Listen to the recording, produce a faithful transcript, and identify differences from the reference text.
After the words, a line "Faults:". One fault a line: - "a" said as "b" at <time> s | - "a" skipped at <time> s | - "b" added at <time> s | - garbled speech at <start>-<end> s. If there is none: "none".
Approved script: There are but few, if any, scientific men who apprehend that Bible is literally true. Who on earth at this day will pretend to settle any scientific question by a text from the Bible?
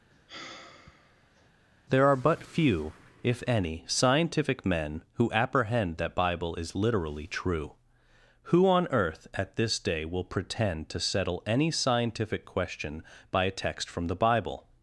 There are but few, if any, scientific men who apprehend that Bible is literally true. Who on earth at this day will pretend to settle any scientific question by a text from the Bible?
Faults:
none